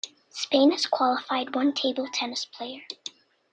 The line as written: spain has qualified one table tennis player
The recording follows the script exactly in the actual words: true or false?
true